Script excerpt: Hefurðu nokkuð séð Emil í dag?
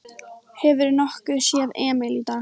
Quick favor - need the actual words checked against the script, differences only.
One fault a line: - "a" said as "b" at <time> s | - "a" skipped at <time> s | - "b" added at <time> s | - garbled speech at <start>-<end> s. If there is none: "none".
none